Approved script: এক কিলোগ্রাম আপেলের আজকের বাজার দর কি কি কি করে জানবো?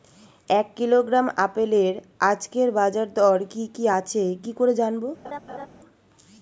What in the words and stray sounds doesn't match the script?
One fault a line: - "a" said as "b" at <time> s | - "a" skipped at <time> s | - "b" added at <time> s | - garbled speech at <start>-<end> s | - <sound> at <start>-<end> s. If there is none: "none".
- "আছে" added at 4.0 s
- laugh at 5.2-5.7 s